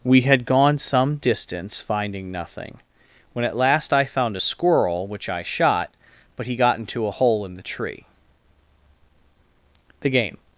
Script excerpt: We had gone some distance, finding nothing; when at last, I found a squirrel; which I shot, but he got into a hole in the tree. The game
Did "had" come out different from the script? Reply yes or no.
no